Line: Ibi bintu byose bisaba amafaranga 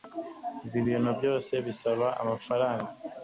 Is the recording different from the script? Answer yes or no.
no